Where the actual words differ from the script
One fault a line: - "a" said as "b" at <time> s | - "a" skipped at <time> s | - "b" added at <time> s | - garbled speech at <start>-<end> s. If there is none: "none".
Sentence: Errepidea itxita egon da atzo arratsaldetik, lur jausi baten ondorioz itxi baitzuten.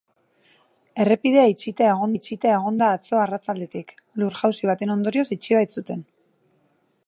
- "itxita egon" added at 2.2 s